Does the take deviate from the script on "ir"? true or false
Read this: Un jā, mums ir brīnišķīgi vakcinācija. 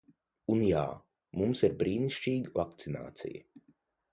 false